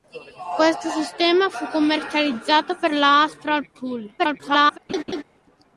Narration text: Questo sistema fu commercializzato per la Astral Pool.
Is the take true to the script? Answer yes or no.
no